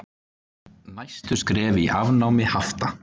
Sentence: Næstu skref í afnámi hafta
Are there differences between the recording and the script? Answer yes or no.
no